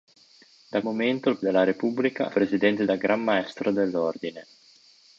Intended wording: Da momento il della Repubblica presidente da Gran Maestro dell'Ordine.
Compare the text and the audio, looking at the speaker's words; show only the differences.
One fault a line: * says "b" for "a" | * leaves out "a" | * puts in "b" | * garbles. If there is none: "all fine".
all fine